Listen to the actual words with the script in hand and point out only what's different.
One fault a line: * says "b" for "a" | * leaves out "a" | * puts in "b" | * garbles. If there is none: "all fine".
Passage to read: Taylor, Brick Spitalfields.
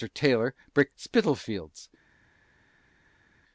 all fine